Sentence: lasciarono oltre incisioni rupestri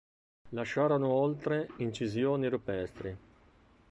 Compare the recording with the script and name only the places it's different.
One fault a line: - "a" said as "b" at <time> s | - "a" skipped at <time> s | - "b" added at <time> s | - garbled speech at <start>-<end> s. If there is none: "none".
none